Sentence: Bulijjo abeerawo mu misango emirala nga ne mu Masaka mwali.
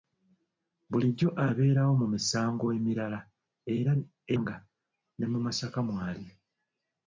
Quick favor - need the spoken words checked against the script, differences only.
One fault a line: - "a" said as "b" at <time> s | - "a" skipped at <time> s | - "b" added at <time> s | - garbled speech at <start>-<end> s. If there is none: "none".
none